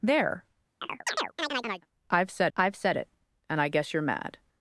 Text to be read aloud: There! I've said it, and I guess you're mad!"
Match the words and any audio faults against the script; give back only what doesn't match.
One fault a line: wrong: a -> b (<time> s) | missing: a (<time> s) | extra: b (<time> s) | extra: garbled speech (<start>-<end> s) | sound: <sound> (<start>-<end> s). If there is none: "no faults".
sound: chirp (0.8-1.9 s)
extra: I've said (2.6 s)